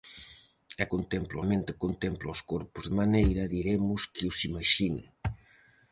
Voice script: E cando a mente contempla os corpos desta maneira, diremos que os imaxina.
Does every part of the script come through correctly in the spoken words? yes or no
no